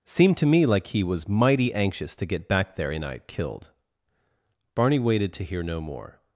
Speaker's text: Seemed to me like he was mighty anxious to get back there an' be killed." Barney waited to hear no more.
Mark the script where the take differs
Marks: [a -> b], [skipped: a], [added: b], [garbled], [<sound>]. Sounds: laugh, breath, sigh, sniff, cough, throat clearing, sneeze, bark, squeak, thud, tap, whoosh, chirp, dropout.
Seemed to me like he was mighty anxious to get back there [an' be -> and I] killed." Barney waited to hear no more.